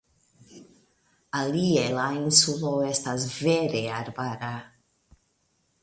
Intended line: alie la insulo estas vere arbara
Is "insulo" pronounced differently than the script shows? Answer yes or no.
no